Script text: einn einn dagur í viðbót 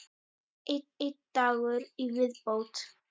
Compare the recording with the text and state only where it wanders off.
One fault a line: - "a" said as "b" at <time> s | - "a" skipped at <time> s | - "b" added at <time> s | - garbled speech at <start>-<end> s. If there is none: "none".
none